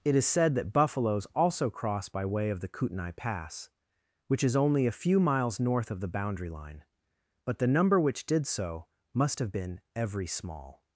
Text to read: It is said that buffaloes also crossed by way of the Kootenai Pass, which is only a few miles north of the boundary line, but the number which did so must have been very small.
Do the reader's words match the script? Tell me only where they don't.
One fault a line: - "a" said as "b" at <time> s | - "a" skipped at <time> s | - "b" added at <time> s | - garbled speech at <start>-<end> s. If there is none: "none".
- "crossed" said as "cross" at 1.7 s
- "very" said as "every" at 9.9 s